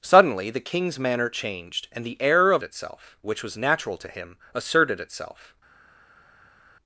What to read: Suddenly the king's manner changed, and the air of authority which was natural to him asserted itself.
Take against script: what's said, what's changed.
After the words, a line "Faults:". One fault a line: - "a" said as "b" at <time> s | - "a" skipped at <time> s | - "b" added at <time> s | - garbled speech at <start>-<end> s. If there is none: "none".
Suddenly the king's manner changed, and the air of itself which was natural to him asserted itself.
Faults:
- "authority" said as "itself" at 2.6 s